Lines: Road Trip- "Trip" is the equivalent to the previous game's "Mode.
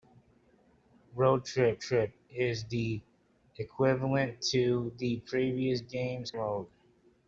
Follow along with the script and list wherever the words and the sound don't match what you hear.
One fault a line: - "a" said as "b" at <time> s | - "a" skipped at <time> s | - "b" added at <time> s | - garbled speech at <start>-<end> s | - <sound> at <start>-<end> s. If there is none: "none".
none